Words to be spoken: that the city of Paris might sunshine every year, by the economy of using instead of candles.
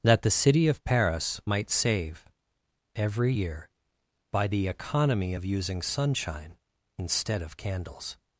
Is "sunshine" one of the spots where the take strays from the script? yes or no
yes